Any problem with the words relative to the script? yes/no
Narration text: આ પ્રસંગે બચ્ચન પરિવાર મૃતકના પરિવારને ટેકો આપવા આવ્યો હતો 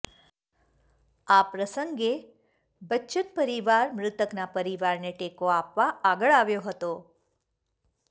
yes